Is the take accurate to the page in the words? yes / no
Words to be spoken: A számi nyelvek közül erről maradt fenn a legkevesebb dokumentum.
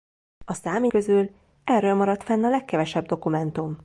no